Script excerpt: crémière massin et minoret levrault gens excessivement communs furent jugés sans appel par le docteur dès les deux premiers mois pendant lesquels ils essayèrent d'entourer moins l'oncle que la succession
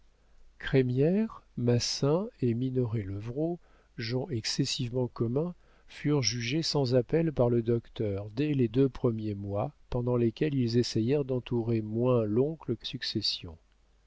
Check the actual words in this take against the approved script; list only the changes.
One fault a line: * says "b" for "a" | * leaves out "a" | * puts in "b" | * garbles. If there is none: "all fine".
* leaves out "la"